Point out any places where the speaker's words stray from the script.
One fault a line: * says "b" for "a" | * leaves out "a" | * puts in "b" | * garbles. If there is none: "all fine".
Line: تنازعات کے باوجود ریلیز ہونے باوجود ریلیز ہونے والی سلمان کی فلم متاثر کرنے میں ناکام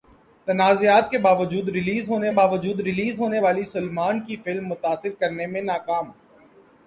all fine